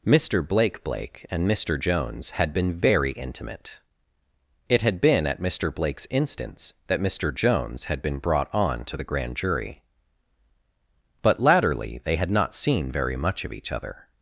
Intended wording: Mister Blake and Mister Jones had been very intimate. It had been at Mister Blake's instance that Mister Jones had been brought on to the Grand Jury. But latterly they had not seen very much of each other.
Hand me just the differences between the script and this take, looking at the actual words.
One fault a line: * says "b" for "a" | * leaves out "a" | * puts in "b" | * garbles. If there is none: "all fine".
* puts in "Blake"